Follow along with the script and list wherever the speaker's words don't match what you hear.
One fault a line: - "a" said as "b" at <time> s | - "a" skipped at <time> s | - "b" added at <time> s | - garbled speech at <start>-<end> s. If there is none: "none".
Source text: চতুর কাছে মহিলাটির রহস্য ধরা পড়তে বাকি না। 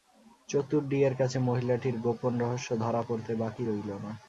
- "ডি-এর" added at 0.9 s
- "গোপন" added at 2.0 s
- "রইল" added at 3.6 s